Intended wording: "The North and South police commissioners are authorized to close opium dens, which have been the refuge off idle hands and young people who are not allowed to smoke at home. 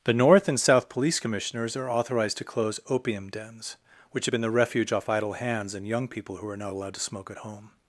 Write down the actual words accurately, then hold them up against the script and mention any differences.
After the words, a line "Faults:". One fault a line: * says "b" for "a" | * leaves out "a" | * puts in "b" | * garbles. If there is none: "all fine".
"The North and South police commissioners are authorized to close opium dens, which have been the refuge off idle hands and young people who are not allowed to smoke at home.
Faults:
all fine